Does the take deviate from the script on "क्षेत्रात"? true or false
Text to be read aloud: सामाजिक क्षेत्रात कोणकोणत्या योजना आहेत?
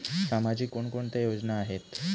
true